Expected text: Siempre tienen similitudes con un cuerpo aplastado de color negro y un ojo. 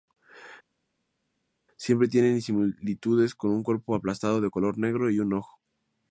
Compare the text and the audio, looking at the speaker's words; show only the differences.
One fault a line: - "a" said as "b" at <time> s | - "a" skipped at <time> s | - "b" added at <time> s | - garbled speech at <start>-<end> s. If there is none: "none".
none